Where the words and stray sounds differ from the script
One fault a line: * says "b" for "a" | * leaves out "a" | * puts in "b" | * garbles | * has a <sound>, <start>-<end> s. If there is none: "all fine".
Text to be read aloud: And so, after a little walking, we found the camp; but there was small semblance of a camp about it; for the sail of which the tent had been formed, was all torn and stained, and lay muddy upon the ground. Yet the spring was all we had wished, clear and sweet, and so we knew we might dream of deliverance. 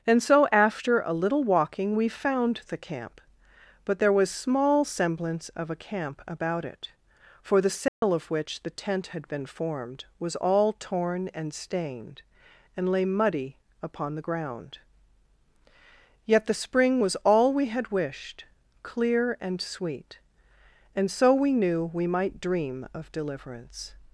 * has a dropout, 7.9-8.0 s